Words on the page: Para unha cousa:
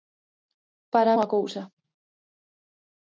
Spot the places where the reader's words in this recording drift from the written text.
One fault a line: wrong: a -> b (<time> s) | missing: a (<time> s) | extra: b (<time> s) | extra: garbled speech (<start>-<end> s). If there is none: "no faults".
no faults